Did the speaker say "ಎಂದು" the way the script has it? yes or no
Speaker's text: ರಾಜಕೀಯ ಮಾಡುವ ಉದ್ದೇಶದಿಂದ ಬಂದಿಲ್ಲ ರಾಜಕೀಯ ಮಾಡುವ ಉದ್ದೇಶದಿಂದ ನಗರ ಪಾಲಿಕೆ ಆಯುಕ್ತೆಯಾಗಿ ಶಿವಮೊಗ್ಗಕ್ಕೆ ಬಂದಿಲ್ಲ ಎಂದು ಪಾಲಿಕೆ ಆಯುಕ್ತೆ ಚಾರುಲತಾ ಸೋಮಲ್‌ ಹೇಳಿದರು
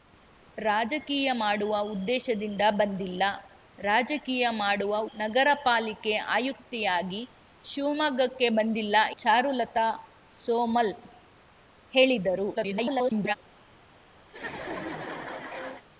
no